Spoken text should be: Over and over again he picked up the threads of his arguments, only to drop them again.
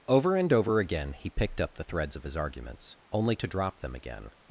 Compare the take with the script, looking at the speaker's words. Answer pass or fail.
pass